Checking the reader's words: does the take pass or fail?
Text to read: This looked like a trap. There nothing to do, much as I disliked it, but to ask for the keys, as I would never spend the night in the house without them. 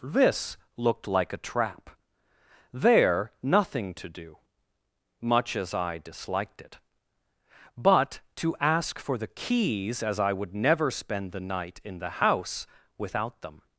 pass